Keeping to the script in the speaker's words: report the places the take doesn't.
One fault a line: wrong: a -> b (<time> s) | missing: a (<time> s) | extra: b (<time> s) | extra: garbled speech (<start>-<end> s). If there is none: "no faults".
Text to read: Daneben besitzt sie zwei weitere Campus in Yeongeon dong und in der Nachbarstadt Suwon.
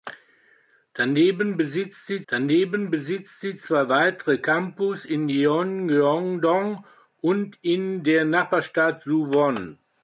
extra: daneben besitzt sie (2.3 s)